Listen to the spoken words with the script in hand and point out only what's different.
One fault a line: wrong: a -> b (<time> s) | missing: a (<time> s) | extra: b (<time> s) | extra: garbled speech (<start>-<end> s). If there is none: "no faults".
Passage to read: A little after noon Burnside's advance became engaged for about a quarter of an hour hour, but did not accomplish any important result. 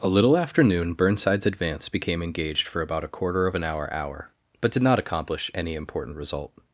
no faults